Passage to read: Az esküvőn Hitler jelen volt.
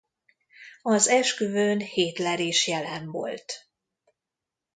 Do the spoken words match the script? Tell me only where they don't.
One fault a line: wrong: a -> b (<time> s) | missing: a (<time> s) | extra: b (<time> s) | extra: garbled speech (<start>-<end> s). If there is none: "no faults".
extra: is (2.4 s)